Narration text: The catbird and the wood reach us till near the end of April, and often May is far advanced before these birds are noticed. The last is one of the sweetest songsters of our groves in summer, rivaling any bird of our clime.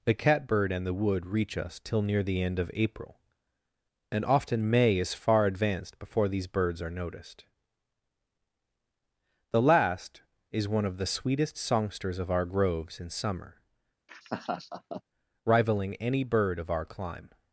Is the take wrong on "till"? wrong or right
right